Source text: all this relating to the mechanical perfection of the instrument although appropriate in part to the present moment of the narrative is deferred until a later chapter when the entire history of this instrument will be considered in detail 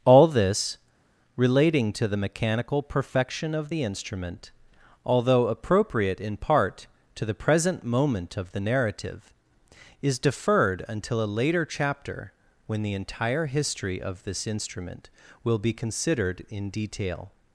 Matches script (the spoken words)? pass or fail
pass